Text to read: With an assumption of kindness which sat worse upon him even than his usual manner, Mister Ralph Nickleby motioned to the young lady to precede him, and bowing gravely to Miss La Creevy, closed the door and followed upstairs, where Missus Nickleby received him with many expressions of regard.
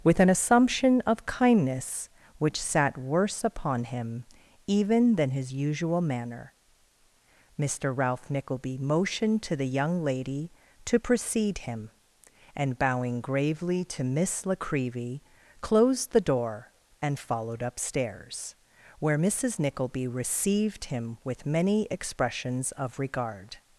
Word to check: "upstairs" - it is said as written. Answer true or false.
true